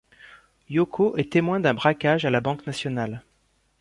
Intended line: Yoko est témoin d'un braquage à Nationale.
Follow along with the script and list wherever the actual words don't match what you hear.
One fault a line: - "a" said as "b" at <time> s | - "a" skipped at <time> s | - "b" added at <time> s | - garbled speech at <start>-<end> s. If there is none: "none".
- "la Banque" added at 2.3 s